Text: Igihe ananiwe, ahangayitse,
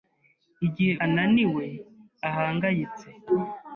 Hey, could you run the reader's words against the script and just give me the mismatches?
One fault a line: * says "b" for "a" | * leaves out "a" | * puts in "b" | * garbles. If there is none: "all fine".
all fine